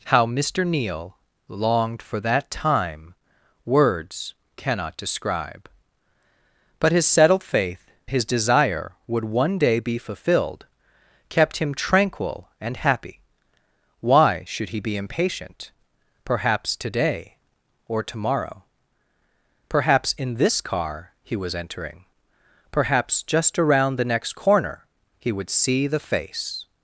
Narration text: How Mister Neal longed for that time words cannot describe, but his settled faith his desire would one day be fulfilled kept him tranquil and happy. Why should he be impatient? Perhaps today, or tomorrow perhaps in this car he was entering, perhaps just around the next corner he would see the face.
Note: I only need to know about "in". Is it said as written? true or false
true